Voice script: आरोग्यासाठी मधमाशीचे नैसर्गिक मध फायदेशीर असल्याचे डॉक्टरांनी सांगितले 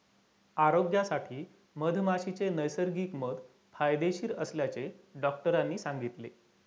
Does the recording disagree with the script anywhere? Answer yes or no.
no